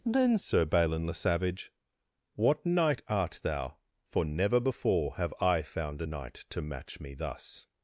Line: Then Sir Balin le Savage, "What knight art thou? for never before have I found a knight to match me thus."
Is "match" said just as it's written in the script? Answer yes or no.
yes